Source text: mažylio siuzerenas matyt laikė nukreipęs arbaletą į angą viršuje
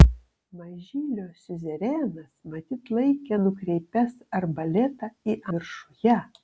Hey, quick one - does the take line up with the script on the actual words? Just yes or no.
no